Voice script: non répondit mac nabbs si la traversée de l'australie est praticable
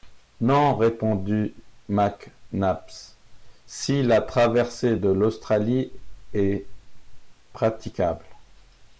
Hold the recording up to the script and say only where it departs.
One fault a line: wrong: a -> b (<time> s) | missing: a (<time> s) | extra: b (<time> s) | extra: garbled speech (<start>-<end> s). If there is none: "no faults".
no faults